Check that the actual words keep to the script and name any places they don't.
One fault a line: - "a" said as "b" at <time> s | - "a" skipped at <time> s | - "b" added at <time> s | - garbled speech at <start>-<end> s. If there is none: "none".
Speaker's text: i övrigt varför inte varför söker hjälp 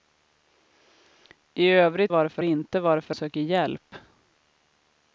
none